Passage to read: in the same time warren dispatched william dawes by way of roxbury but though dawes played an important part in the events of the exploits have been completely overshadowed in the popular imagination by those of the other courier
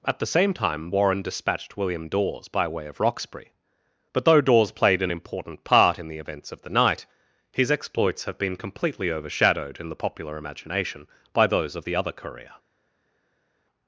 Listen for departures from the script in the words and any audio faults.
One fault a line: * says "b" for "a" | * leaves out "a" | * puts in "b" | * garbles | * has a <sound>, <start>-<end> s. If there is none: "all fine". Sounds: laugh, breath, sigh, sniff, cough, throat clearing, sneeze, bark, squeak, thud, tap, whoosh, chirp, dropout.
* says "at" for "in"
* puts in "night his"